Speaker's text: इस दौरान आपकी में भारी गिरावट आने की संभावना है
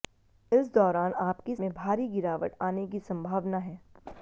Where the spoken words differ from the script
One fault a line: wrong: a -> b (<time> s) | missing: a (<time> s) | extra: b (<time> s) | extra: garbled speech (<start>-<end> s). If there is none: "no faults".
no faults